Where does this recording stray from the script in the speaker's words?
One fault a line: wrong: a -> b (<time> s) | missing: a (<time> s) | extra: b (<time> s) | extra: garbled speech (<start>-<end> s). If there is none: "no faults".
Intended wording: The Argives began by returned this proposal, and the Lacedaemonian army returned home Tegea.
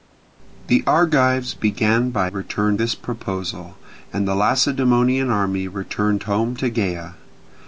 no faults